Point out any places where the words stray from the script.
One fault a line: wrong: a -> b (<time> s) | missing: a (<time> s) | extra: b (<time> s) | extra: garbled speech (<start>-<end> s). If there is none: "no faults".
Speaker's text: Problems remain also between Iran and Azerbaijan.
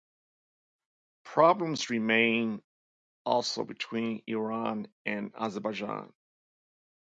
no faults